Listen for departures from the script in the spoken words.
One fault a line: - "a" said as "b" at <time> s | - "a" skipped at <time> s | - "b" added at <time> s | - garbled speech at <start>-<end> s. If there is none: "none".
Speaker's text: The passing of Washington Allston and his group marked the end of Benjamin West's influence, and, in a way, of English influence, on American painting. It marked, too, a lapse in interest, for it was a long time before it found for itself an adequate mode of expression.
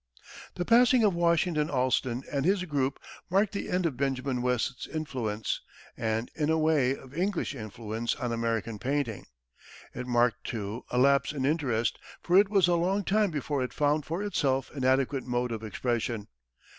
none